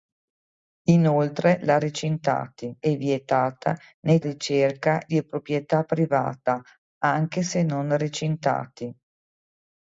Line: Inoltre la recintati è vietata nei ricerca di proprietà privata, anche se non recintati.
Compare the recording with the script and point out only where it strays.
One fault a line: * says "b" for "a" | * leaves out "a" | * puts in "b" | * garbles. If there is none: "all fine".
all fine